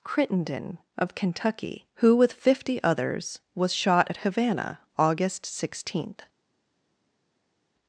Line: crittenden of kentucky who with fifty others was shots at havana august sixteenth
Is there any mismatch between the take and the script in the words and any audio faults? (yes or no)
yes